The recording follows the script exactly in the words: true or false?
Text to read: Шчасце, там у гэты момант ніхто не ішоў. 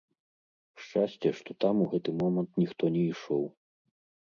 false